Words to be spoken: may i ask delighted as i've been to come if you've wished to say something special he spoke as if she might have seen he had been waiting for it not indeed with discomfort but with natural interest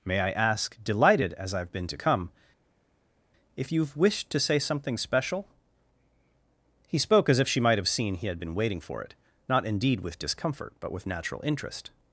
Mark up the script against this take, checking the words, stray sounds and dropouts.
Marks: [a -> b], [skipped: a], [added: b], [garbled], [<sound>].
may i ask delighted as i've been to come if you've wished to say something special he spoke as if she might have seen he had been waiting for it not indeed with discomfort but with natural interest